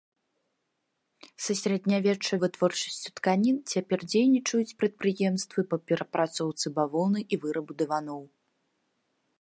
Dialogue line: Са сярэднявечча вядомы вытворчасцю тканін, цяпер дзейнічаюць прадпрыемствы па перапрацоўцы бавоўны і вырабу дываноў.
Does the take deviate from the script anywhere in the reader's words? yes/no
yes